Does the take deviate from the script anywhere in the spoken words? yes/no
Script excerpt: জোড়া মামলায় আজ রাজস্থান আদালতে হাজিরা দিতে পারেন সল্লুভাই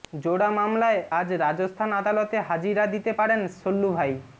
no